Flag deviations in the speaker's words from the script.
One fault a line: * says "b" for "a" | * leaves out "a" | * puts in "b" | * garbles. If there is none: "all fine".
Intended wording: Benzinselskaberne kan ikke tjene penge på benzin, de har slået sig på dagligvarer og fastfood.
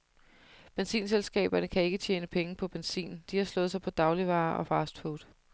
all fine